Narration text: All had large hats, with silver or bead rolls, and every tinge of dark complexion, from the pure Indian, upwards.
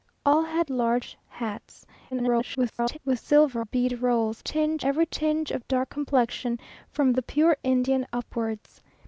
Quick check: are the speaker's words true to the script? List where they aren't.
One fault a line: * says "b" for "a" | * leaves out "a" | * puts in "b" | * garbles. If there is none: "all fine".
* garbles
* leaves out "or"
* says "tinge" for "and"